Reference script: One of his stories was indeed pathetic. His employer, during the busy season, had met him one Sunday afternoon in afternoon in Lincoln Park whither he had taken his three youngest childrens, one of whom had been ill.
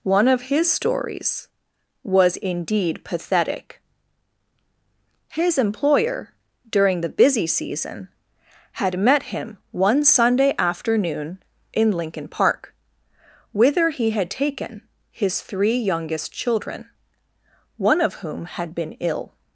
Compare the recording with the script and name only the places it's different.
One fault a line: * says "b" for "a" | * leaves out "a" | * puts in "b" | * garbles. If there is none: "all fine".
* leaves out "afternoon in"
* says "children" for "childrens"